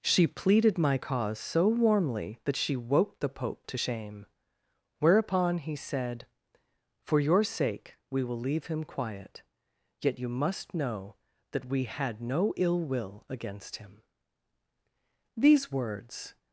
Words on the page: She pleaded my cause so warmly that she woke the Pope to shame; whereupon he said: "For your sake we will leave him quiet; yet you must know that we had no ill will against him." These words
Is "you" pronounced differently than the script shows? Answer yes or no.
no